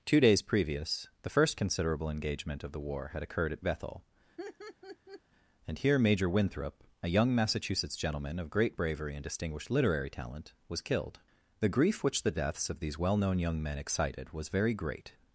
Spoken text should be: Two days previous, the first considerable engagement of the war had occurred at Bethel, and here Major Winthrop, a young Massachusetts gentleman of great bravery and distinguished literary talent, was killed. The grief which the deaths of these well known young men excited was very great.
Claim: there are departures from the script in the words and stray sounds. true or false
true